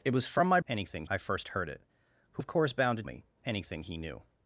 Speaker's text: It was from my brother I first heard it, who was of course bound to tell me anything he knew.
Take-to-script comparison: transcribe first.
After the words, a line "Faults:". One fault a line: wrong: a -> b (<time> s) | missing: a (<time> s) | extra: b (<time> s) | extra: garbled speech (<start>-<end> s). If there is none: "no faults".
It was from my anything I first heard it, who of course bound to me anything he knew.
Faults:
wrong: brother -> anything (0.7 s)
missing: was (2.4 s)
missing: tell (3.0 s)